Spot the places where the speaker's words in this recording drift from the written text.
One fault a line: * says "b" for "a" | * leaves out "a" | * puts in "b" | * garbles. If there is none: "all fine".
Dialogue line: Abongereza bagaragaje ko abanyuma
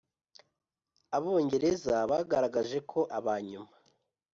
all fine